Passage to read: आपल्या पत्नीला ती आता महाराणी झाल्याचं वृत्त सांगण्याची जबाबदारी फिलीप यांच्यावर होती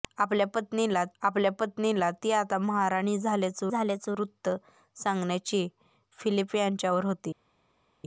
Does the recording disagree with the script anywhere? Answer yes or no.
yes